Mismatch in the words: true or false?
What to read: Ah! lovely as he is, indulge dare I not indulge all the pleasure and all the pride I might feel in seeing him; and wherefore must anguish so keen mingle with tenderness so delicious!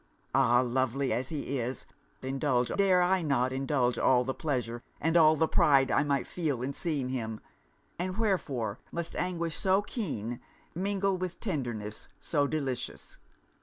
false